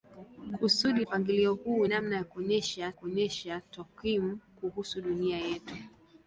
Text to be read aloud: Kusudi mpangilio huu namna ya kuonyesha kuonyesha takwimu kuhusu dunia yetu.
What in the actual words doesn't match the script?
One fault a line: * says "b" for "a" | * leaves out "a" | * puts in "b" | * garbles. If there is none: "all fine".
all fine